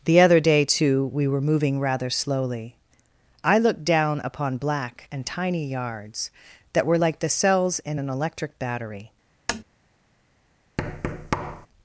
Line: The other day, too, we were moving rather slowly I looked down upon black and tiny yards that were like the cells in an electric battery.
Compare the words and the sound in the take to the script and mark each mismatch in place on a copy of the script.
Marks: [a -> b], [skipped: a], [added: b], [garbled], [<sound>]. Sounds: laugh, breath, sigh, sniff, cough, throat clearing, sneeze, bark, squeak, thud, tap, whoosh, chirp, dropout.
The other day, too, we were moving rather slowly I looked down upon black and tiny yards that were like the cells in an electric battery. [tap] [thud]